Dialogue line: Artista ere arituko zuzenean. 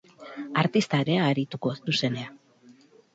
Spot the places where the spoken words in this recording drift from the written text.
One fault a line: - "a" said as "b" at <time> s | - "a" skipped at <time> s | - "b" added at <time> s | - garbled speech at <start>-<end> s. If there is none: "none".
none